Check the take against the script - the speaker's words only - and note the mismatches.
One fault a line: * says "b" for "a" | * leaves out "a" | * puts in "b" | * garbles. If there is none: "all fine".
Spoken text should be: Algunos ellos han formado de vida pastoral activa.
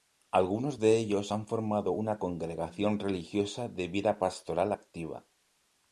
* puts in "de"
* puts in "una congregación religiosa"